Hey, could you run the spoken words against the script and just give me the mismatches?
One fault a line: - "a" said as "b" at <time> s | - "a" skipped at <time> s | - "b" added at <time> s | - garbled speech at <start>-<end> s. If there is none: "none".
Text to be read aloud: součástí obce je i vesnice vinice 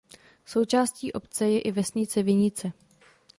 none